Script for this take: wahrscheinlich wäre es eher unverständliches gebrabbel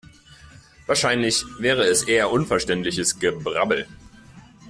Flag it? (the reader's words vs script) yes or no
no